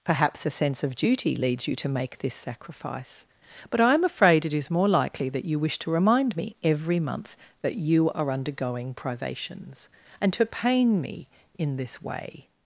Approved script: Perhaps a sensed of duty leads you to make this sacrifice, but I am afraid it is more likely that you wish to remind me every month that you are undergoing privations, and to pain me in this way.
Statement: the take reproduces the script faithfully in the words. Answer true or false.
false